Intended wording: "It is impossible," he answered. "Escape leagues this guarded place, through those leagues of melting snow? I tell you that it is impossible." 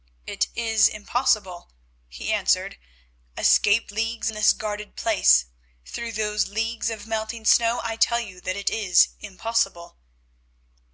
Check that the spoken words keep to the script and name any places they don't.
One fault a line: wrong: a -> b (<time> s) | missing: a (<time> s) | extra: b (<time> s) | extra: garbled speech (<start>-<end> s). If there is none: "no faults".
no faults